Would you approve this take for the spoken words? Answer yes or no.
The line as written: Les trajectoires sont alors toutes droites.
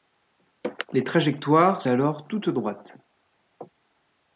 no